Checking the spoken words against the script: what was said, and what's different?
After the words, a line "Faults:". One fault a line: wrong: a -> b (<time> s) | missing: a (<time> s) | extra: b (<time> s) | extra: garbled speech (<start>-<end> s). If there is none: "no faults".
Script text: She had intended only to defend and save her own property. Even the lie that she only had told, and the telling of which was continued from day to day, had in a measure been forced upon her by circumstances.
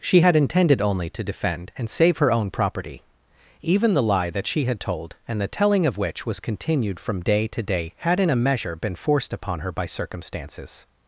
She had intended only to defend and save her own property. Even the lie that she had told, and the telling of which was continued from day to day, had in a measure been forced upon her by circumstances.
Faults:
missing: only (4.6 s)